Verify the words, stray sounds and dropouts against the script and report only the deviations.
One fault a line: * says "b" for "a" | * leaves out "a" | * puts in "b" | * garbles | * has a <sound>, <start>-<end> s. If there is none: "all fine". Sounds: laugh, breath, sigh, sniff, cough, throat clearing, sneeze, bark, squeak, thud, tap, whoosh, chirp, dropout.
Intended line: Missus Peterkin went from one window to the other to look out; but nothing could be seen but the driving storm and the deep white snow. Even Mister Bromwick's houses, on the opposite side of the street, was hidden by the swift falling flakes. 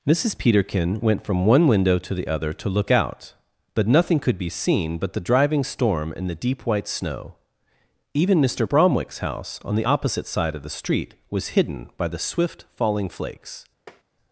* says "house" for "houses"
* has a tap, 13.9-14.0 s